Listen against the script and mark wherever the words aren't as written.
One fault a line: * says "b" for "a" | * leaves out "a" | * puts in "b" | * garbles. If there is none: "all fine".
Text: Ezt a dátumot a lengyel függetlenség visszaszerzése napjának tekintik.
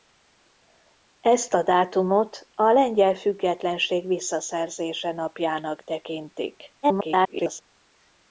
* garbles